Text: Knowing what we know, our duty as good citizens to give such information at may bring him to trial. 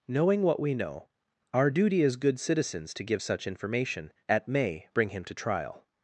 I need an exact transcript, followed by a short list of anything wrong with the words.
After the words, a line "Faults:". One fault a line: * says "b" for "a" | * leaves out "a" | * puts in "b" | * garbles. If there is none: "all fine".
Knowing what we know, our duty as good citizens to give such information at may bring him to trial.
Faults:
all fine